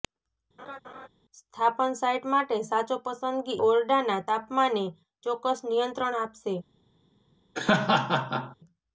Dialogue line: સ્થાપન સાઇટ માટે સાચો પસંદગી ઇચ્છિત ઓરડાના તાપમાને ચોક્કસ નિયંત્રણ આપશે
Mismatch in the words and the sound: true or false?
true